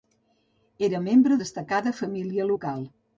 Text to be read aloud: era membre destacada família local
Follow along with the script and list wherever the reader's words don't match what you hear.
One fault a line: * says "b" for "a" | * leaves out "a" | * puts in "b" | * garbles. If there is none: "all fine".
all fine